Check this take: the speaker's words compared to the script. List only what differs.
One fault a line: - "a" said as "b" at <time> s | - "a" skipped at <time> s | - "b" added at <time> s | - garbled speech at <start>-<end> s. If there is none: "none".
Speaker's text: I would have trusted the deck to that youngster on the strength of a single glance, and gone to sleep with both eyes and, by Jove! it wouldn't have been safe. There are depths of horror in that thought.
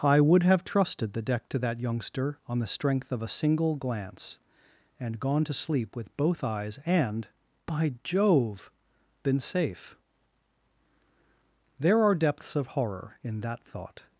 - "it wouldn't have" skipped at 8.7 s